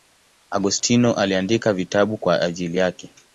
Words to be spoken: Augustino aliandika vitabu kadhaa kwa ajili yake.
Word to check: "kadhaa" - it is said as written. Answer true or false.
false